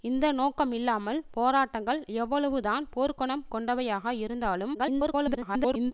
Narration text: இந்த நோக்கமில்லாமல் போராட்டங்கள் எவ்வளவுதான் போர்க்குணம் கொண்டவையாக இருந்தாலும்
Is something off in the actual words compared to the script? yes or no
yes